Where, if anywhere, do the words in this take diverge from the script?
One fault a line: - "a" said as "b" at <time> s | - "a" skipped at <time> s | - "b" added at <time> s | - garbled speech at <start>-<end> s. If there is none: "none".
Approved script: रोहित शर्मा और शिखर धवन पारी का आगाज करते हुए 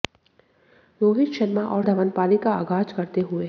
- "शिखर" skipped at 1.8 s